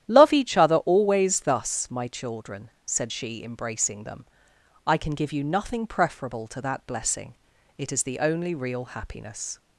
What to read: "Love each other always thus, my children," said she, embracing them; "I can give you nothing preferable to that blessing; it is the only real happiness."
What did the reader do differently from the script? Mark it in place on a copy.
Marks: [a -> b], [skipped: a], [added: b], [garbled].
"Love each other always thus, my children," said she, embracing them; "I can give you nothing preferable to that blessing; it is the only real happiness."